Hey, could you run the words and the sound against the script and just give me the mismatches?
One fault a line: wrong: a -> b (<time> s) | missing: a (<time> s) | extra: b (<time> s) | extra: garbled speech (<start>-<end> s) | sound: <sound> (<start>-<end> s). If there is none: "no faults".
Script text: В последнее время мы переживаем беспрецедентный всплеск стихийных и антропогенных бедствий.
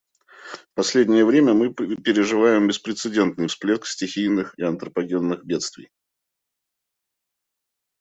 no faults